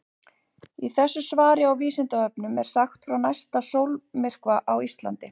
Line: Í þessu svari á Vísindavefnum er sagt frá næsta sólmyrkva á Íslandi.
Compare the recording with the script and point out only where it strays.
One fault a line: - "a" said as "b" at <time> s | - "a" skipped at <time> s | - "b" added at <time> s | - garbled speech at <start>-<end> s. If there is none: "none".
none